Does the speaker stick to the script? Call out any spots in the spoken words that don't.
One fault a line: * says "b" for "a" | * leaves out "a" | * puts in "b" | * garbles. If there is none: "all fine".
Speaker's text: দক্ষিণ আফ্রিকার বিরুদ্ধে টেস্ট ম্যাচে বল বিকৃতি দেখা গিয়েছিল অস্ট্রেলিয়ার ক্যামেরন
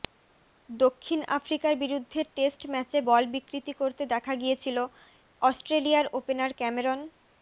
* puts in "করতে"
* puts in "ওপেনার"